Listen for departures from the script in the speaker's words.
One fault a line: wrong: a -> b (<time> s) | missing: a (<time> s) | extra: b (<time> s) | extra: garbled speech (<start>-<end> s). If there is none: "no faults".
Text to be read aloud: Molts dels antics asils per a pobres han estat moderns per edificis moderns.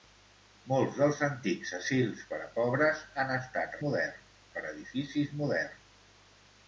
no faults